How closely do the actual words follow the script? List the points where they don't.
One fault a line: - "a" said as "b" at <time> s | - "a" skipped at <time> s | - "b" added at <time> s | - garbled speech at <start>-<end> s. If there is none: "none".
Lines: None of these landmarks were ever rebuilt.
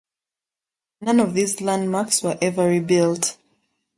none